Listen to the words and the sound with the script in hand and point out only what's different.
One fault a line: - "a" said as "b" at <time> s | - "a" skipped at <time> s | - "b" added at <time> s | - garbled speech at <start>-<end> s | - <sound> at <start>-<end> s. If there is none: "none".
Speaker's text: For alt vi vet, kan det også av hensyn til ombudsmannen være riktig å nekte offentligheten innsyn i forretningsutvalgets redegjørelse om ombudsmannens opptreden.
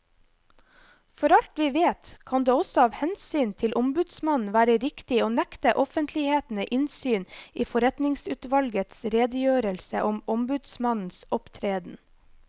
none